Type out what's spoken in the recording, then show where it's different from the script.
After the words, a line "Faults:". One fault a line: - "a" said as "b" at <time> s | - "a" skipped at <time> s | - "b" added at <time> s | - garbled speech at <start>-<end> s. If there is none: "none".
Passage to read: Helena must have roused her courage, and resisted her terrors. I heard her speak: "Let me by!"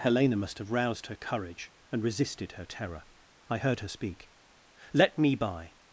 Helena must have roused her courage, and resisted her terror. I heard her speak: "Let me by!"
Faults:
- "terrors" said as "terror" at 2.6 s